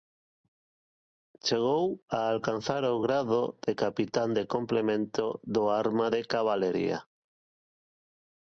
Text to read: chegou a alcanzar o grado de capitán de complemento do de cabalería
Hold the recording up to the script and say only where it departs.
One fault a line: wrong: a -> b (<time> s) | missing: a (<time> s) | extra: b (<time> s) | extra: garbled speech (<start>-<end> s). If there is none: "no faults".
extra: arma (5.8 s)